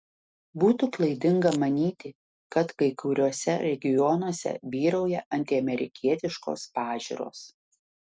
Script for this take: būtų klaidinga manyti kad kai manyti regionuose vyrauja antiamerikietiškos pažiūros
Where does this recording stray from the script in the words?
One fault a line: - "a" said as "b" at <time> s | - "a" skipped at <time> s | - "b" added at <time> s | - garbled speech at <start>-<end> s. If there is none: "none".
- "manyti" said as "kuriuose" at 3.0 s